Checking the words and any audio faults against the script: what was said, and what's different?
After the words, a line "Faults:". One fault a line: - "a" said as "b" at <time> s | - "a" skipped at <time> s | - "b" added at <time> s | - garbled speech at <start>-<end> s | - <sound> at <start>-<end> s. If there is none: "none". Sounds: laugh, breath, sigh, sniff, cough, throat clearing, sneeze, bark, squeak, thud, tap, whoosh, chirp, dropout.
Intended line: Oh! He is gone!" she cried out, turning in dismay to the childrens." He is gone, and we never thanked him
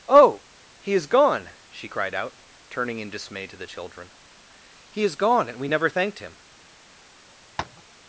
Oh! He is gone!" she cried out, turning in dismay to the children." He is gone, and we never thanked him
Faults:
- "childrens" said as "children" at 3.7 s
- tap at 7.6-7.8 s